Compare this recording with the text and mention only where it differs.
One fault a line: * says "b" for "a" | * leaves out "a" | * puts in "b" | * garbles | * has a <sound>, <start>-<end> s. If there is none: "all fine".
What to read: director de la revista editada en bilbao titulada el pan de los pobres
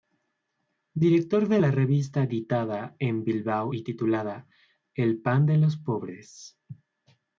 * puts in "y"